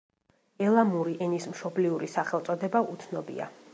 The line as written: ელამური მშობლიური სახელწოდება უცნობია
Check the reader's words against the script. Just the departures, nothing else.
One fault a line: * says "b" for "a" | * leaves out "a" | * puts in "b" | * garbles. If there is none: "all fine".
* puts in "ენის"